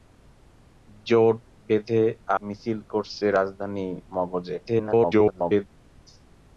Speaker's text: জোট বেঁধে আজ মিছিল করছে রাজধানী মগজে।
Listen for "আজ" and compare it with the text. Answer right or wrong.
wrong